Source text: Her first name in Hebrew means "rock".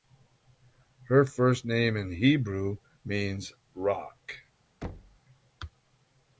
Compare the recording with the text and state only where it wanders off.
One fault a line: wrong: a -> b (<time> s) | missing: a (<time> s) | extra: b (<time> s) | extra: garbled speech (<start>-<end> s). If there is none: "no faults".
no faults